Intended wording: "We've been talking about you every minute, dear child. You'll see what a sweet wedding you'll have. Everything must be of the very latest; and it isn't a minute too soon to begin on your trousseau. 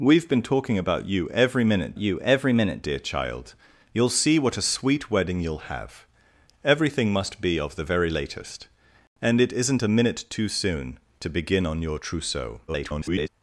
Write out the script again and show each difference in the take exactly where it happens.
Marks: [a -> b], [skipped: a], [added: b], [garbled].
"We've been talking about you every minute, [added: you every minute] dear child. You'll see what a sweet wedding you'll have. Everything must be of the very latest; and it isn't a minute too soon to begin on your trousseau. [garbled]